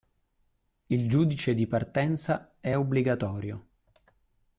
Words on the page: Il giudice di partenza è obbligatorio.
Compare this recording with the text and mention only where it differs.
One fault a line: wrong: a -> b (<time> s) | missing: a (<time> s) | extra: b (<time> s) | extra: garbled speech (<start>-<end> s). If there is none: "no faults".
no faults